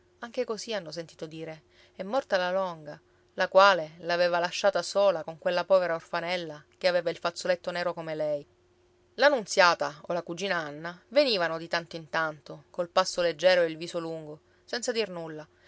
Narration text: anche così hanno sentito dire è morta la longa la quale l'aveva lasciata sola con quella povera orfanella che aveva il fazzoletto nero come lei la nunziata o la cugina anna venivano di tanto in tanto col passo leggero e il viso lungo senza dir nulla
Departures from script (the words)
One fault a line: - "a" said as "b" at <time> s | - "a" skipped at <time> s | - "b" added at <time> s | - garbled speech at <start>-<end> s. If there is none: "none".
none